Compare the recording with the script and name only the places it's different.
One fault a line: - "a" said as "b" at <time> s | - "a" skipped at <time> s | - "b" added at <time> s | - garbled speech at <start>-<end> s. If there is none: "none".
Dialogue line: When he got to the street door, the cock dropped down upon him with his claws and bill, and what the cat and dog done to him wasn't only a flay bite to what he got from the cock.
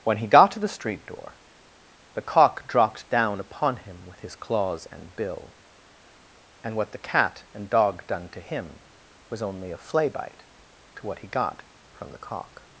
- "wasn't" said as "was" at 9.3 s